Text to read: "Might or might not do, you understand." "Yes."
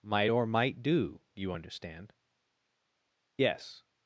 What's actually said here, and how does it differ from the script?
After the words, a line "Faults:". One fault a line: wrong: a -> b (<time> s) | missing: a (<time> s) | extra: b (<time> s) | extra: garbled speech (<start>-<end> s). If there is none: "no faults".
"Might or might do, you understand." "Yes."
Faults:
missing: not (0.8 s)